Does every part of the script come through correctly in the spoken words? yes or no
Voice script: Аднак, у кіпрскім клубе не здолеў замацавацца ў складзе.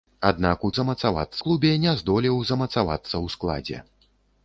no